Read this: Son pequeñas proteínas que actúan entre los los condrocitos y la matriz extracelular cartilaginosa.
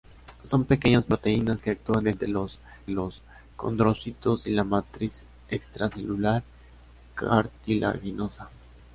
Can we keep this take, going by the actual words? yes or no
yes